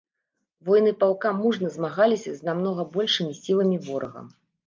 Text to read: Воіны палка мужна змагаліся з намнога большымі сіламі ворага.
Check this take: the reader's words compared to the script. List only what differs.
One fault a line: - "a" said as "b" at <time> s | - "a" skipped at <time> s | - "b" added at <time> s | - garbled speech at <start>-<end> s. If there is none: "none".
none